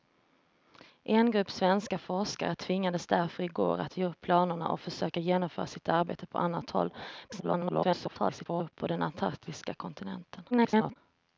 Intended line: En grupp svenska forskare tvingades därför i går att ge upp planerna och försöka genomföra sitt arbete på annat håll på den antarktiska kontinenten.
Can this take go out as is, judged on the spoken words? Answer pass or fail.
fail